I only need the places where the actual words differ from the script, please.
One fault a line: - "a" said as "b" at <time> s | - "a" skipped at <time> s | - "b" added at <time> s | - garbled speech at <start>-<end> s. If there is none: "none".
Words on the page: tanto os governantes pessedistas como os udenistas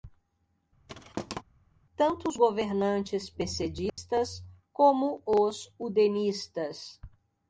none